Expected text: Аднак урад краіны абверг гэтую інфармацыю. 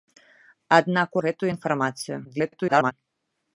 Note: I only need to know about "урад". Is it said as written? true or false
false